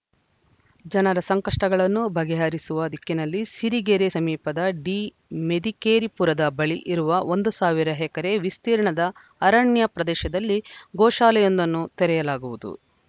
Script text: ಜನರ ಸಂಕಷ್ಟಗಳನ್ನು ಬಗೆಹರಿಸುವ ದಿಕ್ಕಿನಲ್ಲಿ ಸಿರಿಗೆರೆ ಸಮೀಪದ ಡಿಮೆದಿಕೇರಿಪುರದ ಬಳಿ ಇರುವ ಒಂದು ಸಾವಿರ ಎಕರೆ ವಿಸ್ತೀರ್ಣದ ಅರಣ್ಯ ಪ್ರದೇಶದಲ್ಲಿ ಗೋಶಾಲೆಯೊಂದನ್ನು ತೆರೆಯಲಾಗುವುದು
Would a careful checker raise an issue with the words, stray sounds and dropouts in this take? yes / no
no